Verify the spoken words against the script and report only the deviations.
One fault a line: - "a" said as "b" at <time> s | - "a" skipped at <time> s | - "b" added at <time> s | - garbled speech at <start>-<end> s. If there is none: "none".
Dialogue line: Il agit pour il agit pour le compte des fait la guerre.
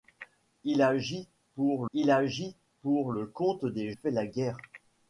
none